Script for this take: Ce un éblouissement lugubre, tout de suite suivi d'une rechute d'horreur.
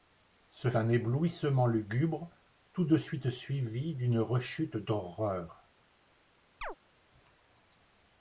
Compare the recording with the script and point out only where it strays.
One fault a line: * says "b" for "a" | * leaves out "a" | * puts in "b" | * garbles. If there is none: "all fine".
all fine